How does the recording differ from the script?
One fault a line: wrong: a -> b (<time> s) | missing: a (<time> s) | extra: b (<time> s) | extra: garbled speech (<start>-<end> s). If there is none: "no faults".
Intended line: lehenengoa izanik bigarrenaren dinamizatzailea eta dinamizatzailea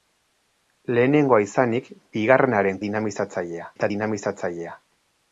no faults